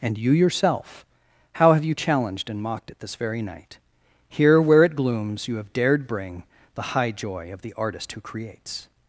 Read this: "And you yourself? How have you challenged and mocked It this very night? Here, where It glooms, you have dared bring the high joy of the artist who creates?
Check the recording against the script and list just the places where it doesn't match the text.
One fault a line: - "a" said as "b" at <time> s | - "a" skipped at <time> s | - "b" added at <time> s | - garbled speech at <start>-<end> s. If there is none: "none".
none